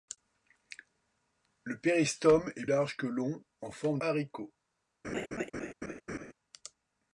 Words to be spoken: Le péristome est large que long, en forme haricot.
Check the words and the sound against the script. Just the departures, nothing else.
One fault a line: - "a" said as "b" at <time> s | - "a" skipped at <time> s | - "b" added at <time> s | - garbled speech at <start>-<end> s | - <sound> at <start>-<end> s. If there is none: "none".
- laugh at 5.0-6.3 s